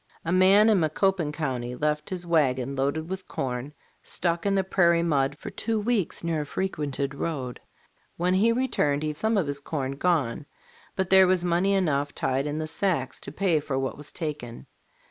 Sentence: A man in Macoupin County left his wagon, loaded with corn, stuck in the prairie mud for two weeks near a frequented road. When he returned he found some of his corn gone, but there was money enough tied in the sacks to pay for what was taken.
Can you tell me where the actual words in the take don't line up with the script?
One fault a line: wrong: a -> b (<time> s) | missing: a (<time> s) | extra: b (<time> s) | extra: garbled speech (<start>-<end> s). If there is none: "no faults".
missing: found (9.1 s)